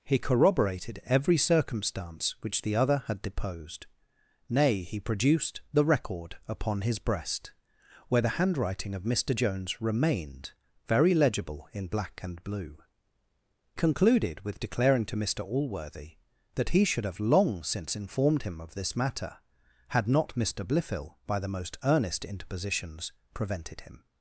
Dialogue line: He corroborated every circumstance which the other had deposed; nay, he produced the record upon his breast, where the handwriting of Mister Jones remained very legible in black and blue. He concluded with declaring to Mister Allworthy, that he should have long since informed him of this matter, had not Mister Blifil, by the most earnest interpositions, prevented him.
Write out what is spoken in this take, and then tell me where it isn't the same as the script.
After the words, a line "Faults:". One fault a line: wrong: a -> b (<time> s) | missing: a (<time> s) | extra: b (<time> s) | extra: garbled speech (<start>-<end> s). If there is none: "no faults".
He corroborated every circumstance which the other had deposed; nay, he produced the record upon his breast, where the handwriting of Mister Jones remained very legible in black and blue. Concluded with declaring to Mister Allworthy, that he should have long since informed him of this matter, had not Mister Blifil, by the most earnest interpositions, prevented him.
Faults:
missing: He (12.8 s)